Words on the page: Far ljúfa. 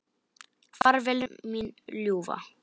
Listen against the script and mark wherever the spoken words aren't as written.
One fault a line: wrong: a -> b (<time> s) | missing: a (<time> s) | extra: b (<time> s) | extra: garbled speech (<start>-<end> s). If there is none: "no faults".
extra: vel mín (1.1 s)